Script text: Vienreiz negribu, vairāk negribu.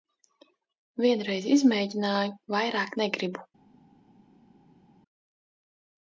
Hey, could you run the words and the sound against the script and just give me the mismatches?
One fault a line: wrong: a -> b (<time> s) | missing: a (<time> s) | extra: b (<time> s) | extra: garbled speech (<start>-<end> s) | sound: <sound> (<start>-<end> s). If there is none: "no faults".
wrong: negribu -> izmēģināju (1.6 s)